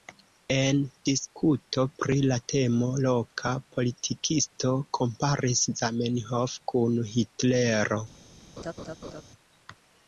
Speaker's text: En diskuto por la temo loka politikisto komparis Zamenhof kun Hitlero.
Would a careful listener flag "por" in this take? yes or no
yes